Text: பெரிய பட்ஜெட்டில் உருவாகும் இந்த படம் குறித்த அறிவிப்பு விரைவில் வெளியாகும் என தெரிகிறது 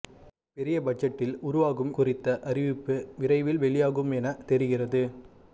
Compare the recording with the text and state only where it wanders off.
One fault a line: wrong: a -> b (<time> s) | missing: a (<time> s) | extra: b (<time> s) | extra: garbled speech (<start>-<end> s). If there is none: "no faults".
missing: இந்த படம் (1.9 s)